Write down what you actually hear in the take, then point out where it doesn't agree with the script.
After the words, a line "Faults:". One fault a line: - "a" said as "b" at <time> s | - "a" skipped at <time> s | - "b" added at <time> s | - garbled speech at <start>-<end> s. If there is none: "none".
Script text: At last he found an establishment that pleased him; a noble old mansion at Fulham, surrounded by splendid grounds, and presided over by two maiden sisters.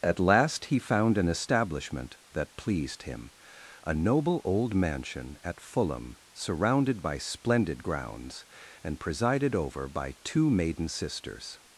At last he found an establishment that pleased him; a noble old mansion at Fulham, surrounded by splendid grounds, and presided over by two maiden sisters.
Faults:
none